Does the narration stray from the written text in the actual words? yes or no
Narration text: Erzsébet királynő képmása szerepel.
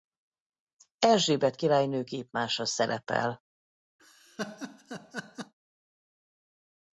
no